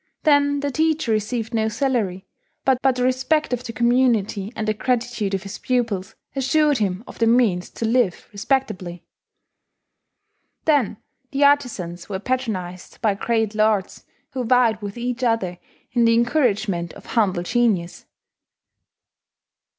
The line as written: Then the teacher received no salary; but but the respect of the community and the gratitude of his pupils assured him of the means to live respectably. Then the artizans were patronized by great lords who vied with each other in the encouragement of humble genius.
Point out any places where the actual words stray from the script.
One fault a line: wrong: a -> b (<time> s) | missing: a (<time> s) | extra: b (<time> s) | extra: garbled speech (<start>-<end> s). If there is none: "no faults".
no faults